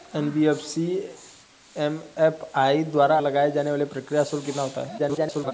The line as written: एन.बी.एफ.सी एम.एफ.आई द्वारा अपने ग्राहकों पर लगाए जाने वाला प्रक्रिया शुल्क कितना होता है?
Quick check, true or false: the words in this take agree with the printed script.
false